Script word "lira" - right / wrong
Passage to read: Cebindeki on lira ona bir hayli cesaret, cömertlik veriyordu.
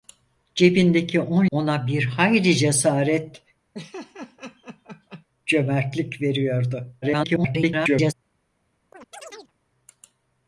wrong